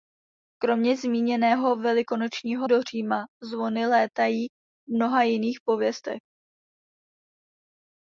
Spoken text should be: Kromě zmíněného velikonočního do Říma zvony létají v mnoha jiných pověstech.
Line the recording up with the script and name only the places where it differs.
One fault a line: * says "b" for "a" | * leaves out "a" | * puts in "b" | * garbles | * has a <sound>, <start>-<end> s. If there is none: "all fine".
all fine